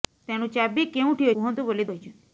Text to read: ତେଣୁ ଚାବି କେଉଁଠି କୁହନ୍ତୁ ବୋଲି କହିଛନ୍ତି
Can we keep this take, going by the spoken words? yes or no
yes